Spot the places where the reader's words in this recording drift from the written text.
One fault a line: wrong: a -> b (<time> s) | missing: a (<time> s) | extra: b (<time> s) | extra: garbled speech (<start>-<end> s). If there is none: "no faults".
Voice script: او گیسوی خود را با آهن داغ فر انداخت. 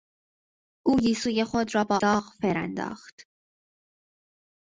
missing: آهن (2.0 s)